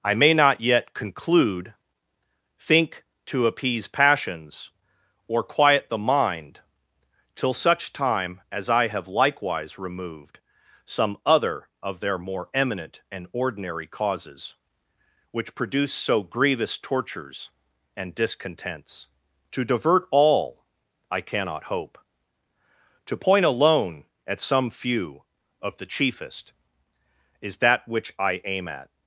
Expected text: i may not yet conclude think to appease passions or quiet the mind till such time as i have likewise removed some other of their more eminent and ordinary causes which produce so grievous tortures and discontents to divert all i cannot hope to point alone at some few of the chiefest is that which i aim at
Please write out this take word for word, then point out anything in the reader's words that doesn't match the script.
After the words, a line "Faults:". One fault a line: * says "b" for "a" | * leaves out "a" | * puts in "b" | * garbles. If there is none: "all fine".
i may not yet conclude think to appease passions or quiet the mind till such time as i have likewise removed some other of their more eminent and ordinary causes which produce so grievous tortures and discontents to divert all i cannot hope to point alone at some few of the chiefest is that which i aim at
Faults:
all fine